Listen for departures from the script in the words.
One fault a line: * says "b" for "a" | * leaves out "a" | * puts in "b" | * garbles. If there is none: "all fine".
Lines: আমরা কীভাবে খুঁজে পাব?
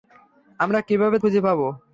all fine